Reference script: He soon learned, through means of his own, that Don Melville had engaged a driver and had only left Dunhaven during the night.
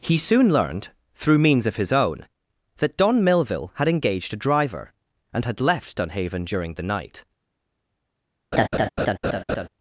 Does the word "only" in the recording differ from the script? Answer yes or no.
yes